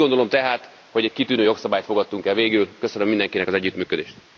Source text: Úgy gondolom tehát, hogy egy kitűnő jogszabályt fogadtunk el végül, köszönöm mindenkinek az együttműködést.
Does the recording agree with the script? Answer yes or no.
yes